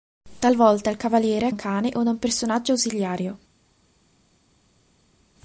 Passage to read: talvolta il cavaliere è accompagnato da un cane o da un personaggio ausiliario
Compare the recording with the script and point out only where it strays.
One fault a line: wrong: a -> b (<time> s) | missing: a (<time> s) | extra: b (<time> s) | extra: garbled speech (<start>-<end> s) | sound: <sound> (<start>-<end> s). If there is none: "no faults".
missing: accompagnato da (1.5 s)